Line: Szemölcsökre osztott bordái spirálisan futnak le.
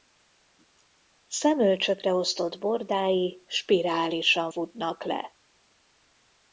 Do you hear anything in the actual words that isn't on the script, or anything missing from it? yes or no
no